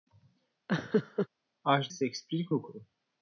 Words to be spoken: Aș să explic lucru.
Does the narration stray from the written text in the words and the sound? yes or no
yes